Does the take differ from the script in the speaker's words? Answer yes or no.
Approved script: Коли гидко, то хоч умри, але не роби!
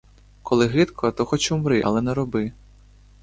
no